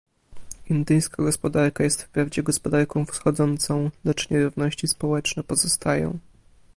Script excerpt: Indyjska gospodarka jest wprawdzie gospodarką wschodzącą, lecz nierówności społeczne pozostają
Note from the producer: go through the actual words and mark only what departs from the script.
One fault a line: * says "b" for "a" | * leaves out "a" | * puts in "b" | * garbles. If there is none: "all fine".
all fine